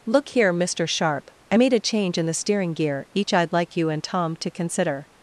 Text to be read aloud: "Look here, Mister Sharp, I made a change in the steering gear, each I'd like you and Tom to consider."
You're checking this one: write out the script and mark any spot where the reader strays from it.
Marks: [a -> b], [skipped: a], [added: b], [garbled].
"Look here, Mister Sharp, I made a change in the steering gear, each I'd like you and Tom to consider."